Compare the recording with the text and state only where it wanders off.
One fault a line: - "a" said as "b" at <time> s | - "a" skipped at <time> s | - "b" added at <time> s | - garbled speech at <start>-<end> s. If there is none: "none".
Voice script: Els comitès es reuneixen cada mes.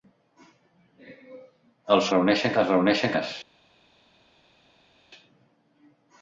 - "comitès" said as "reuneixen" at 2.2 s
- "cada" skipped at 3.2 s